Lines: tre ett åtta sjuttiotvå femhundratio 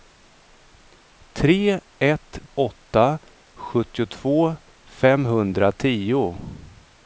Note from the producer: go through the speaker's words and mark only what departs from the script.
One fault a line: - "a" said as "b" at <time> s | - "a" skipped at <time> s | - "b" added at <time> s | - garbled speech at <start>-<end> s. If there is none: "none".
none